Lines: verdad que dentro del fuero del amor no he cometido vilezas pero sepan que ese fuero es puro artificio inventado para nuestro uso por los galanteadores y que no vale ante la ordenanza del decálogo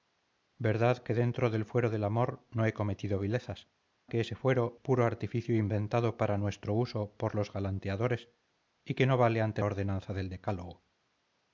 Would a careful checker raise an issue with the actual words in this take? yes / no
yes